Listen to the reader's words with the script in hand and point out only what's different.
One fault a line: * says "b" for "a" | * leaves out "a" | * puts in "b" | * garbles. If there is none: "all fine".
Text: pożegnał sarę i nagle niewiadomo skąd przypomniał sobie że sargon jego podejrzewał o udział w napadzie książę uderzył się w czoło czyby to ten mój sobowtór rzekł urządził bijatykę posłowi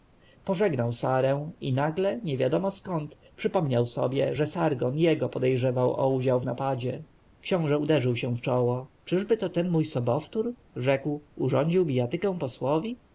all fine